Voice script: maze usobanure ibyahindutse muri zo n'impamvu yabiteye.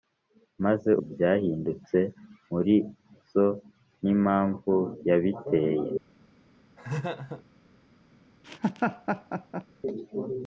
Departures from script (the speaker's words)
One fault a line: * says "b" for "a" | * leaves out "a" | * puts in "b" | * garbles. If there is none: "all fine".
* leaves out "usobanure"